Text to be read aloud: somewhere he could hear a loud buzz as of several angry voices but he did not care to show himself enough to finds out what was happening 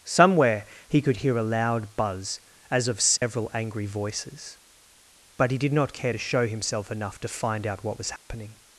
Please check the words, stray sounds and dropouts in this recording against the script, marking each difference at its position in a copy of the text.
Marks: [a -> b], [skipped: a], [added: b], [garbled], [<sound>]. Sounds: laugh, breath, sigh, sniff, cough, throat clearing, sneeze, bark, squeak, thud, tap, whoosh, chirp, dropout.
somewhere he could hear a loud buzz as of several [dropout] angry voices but he did not care to show himself enough to [finds -> find] out what was happening [dropout]